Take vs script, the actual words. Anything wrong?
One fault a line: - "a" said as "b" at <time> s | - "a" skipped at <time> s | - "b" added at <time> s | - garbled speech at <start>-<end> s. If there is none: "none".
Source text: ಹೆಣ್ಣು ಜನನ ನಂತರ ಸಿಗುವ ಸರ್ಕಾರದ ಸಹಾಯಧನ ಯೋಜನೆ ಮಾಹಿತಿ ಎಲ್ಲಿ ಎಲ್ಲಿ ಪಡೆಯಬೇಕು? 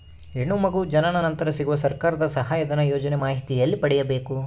- "ಮಗು" added at 0.6 s
- "ಎಲ್ಲಿ" skipped at 3.8 s